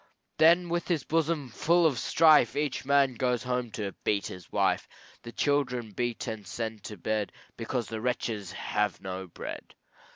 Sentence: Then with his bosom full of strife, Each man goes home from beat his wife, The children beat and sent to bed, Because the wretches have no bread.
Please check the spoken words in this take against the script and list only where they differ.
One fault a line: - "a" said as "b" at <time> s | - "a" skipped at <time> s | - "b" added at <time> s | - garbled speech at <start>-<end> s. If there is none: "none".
- "from" said as "to" at 3.7 s